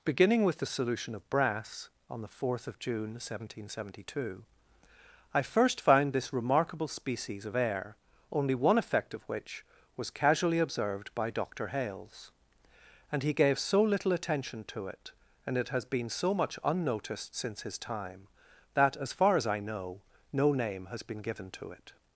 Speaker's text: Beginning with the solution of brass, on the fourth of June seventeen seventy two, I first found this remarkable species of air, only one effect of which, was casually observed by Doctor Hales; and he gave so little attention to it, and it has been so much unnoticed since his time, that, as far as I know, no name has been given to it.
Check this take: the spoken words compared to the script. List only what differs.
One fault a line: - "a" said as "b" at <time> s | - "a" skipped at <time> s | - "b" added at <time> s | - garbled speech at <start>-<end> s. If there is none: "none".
none